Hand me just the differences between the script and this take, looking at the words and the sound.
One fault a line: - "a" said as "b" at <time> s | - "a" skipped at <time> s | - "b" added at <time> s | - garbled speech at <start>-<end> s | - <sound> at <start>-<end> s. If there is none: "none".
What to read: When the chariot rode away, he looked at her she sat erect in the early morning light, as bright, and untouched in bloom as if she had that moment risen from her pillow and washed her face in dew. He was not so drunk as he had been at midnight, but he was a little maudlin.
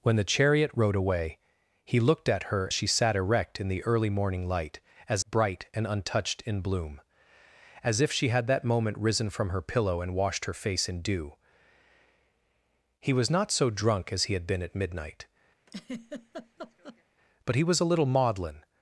- laugh at 15.7-17.0 s